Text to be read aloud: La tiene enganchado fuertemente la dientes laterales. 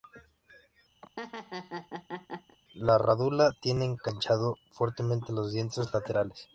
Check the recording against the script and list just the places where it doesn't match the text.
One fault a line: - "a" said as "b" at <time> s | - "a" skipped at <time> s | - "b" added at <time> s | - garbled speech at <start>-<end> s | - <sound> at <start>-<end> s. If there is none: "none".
- laugh at 1.0-2.6 s
- "rádula" added at 3.0 s
- "la" said as "los" at 5.3 s